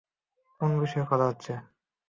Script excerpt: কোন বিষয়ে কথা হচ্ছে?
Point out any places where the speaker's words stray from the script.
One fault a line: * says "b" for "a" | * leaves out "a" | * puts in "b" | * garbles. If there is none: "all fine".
all fine